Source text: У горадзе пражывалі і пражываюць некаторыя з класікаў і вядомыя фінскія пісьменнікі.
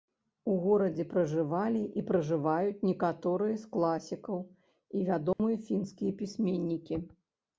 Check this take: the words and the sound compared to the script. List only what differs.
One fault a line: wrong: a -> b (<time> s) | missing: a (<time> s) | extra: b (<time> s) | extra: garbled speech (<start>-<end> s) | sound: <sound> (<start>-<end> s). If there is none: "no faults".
sound: dropout (5.3-5.4 s)